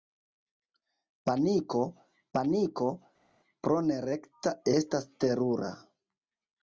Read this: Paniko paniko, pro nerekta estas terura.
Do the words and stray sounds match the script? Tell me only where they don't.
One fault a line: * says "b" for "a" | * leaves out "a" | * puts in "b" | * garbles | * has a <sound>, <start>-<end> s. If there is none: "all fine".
all fine